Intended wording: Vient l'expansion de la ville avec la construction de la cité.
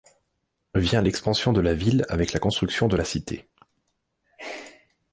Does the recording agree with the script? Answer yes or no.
yes